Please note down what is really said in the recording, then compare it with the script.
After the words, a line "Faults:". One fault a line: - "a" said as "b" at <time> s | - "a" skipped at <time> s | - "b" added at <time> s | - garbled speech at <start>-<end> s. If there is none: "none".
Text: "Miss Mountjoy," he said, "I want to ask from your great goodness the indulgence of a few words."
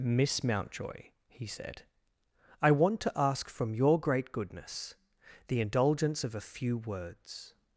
"Miss Mountjoy," he said, "I want to ask from your great goodness the indulgence of a few words."
Faults:
none